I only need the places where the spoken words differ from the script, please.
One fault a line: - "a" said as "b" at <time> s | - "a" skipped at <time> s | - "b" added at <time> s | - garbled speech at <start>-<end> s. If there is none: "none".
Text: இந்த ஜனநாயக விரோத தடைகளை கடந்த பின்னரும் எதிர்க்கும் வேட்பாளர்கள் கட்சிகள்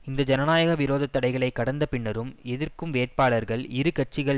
- "இரு" added at 3.7 s